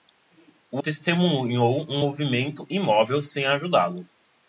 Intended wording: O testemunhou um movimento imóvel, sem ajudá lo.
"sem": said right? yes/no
yes